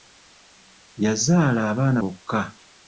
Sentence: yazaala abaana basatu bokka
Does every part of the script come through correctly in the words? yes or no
no